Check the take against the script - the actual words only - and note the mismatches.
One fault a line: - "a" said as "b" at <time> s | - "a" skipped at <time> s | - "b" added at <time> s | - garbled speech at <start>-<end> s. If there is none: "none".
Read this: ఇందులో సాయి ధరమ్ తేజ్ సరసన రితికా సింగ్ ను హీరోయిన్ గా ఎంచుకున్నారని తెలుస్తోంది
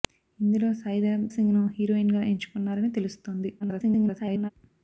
- "తేజ్ సరసన రితికా" skipped at 1.3 s
- garbled speech at 3.6-4.5 s